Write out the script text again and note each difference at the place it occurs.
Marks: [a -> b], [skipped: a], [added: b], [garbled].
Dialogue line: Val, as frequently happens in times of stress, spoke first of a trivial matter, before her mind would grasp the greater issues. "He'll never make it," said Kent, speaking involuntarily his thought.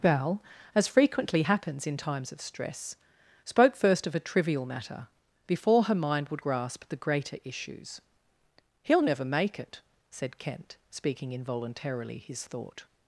Val, as frequently happens in times of stress, spoke first of a trivial matter, before her mind would grasp the greater issues. "He'll never make it," said Kent, speaking involuntarily his thought.